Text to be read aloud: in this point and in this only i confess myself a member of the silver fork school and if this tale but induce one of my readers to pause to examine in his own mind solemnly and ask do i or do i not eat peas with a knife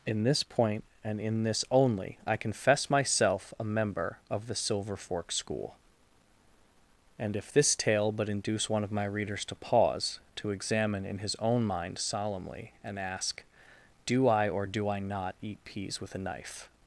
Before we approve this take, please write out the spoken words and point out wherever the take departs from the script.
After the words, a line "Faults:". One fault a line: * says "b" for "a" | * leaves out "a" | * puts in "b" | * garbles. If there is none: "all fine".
in this point and in this only i confess myself a member of the silver fork school and if this tale but induce one of my readers to pause to examine in his own mind solemnly and ask do i or do i not eat peas with a knife
Faults:
all fine